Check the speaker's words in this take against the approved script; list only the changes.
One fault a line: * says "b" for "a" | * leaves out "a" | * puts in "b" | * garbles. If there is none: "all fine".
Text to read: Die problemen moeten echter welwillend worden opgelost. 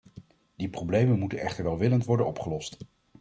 all fine